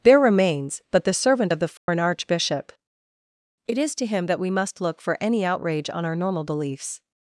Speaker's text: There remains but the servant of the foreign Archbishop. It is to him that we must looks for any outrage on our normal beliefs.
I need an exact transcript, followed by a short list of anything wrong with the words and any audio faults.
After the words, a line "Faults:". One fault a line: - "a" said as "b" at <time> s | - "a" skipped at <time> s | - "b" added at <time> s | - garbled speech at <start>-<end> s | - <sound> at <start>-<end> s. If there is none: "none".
There remains but the servant of the foreign Archbishop. It is to him that we must look for any outrage on our normal beliefs.
Faults:
- dropout at 1.8-1.9 s
- "looks" said as "look" at 4.8 s